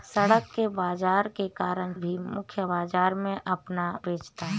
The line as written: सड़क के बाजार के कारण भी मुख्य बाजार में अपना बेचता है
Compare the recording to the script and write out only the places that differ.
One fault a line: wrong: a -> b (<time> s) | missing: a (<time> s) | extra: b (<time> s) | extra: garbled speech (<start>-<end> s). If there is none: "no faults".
no faults